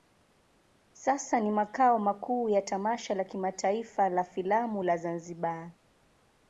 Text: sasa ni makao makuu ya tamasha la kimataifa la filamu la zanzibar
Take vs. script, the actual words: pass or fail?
pass